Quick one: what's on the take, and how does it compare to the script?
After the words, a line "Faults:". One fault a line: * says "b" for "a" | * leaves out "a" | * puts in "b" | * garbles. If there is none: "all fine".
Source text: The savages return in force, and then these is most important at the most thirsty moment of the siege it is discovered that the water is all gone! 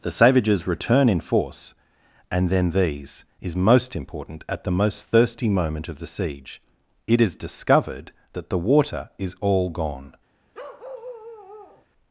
The savages return in force, and then these is most important at the most thirsty moment of the siege it is discovered that the water is all gone!
Faults:
all fine